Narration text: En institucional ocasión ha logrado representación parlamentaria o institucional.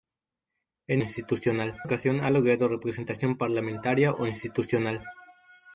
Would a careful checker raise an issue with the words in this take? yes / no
no